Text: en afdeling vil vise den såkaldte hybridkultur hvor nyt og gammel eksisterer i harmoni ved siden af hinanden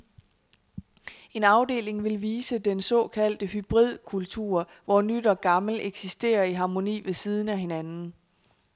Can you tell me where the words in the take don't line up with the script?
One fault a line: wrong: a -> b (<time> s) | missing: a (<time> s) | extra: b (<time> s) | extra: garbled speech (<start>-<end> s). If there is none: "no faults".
no faults